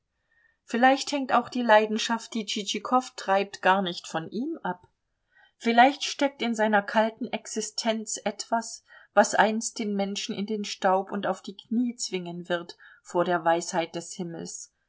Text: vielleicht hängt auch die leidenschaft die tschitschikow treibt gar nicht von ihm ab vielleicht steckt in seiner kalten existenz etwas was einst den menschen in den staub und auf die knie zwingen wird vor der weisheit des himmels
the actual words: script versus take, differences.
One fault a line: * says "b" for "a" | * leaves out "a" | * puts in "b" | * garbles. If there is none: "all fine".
all fine